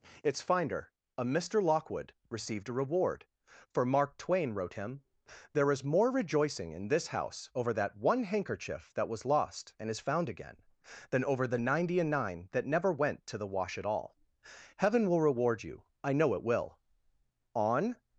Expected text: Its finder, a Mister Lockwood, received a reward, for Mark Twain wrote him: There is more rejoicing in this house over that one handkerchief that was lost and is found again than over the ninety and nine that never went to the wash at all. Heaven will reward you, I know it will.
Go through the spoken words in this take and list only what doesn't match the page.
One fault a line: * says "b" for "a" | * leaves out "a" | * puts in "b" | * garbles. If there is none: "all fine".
* puts in "On"